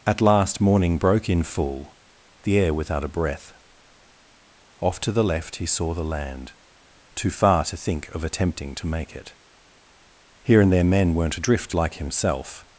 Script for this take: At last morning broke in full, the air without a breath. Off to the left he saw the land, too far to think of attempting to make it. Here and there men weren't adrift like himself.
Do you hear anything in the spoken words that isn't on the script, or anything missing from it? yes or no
no